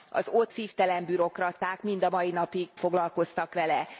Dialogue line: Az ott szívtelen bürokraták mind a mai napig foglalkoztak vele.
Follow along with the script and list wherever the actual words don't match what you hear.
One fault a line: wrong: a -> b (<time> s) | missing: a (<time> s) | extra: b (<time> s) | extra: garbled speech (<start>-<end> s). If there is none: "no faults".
no faults